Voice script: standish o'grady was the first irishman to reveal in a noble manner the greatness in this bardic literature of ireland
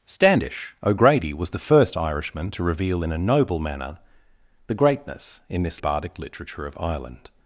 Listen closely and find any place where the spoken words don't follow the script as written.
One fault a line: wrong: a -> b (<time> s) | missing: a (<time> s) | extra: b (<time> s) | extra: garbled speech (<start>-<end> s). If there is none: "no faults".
no faults